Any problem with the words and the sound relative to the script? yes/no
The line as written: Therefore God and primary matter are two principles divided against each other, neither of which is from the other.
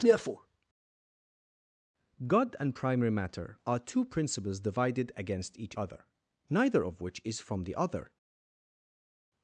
no